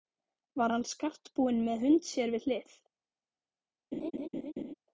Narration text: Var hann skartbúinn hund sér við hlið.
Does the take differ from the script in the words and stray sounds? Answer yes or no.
yes